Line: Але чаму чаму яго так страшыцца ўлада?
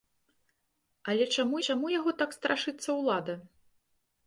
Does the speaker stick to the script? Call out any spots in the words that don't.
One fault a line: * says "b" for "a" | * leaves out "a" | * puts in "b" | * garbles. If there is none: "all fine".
all fine